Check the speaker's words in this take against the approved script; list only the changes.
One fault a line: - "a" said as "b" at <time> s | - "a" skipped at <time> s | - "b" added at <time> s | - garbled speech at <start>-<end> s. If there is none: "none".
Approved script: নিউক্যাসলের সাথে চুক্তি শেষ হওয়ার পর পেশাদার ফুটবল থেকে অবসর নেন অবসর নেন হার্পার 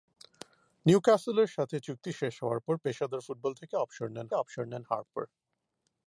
none